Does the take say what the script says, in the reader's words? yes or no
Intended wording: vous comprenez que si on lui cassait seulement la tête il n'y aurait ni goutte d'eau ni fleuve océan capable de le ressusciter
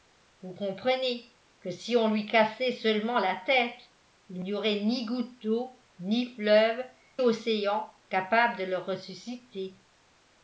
yes